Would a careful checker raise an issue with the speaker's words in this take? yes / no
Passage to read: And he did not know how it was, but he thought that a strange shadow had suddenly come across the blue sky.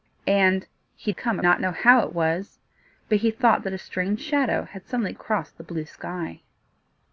yes